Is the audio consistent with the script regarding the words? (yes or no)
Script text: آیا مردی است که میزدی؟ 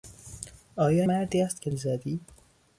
yes